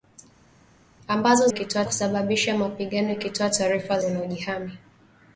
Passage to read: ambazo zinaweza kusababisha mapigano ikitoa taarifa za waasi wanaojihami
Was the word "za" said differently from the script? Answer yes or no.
yes